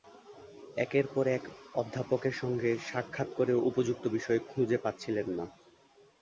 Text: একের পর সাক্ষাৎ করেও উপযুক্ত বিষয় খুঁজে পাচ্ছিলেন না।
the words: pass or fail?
fail